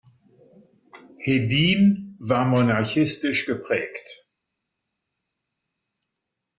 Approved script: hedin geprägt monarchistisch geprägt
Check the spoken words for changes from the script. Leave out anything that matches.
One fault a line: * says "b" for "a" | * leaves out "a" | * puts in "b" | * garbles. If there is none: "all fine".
* says "war" for "geprägt"